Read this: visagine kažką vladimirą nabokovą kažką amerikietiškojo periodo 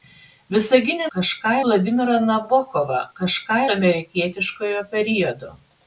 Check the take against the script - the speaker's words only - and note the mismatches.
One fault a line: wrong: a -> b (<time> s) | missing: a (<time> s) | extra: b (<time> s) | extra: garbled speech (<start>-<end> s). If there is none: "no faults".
no faults